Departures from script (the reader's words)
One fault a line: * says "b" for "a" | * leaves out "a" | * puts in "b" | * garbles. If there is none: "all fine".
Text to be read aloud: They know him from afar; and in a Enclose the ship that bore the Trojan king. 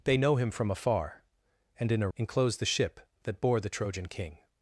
all fine